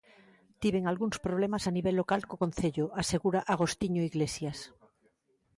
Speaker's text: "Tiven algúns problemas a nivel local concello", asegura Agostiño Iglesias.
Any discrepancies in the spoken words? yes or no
yes